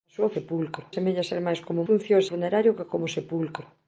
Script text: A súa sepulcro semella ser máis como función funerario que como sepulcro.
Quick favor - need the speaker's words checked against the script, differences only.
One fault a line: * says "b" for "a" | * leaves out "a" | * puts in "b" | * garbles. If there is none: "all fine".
all fine